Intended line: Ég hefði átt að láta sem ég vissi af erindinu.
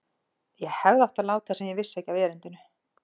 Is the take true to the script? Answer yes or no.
no